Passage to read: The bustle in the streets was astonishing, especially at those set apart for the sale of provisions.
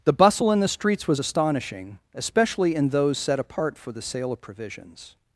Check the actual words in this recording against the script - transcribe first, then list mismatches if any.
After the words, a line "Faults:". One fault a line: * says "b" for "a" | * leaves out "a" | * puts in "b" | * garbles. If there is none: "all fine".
The bustle in the streets was astonishing, especially in those set apart for the sale of provisions.
Faults:
* says "in" for "at"